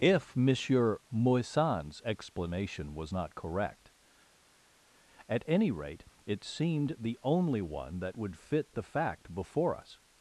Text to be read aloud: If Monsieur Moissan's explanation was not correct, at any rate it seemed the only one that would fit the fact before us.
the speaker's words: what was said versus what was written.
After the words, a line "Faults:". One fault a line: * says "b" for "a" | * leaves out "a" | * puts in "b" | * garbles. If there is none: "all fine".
If Monsieur Moissan's explanation was not correct, at any rate it seemed the only one that would fit the fact before us.
Faults:
all fine